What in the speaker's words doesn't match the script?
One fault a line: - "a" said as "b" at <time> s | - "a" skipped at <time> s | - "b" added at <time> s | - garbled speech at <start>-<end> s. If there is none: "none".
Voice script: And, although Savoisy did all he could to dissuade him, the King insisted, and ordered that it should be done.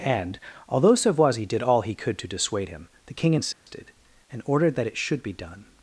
none